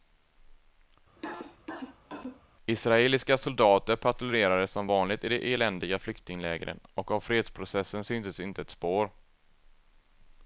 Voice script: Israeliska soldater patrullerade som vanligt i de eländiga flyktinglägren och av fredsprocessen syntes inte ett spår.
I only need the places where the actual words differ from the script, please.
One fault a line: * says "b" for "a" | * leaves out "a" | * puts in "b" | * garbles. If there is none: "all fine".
all fine